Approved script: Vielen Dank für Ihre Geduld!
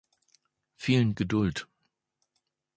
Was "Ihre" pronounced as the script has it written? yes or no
no